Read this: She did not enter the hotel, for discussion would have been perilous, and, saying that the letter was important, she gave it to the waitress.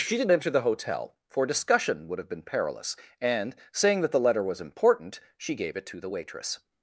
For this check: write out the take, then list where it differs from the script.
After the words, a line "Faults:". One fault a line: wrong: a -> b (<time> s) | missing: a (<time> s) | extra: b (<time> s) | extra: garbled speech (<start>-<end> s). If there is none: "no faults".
She did enter the hotel, for discussion would have been perilous, and, saying that the letter was important, she gave it to the waitress.
Faults:
missing: not (0.3 s)